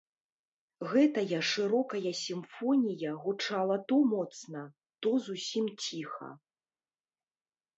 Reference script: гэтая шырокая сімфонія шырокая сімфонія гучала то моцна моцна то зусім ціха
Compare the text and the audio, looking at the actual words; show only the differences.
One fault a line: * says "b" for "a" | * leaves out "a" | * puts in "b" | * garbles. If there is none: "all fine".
* leaves out "шырокая сімфонія"
* leaves out "моцна"